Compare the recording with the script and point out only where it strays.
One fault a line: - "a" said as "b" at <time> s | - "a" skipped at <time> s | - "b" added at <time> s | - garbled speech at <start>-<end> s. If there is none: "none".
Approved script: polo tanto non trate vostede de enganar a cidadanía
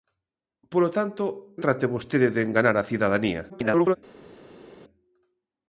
- "non" skipped at 1.2 s
- garbled speech at 3.5-4.0 s